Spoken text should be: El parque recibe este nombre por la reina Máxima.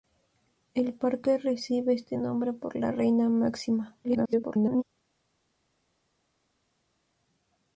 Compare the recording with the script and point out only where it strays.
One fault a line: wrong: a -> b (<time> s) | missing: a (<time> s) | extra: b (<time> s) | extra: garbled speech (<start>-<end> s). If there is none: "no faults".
extra: garbled speech (4.0-4.8 s)